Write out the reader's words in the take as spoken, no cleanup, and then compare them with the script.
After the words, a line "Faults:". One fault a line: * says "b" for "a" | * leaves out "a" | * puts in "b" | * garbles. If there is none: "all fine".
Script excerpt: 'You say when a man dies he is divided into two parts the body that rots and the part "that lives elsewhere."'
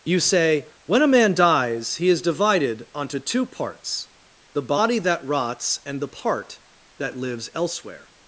'You say when a man dies he is divided onto two parts the body that rots and the part "that lives elsewhere."'
Faults:
* says "onto" for "into"